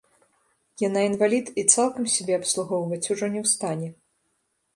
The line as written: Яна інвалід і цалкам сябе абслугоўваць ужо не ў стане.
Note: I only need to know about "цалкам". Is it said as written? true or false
true